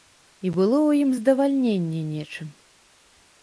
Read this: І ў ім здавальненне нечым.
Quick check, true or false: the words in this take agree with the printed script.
false